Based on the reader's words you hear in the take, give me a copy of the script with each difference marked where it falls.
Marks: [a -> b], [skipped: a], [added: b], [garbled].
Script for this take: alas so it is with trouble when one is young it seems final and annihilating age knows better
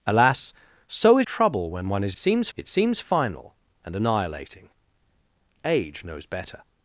alas so it [skipped: is with] trouble when one is [young -> seems] it seems final and annihilating age knows better